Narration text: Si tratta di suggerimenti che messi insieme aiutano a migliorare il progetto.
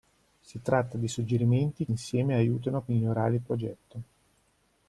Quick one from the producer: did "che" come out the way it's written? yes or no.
no